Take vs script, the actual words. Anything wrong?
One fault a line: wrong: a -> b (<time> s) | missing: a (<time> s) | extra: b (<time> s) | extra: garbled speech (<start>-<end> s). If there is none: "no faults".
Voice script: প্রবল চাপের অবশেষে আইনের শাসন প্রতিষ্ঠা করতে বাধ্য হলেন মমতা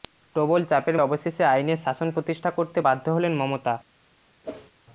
no faults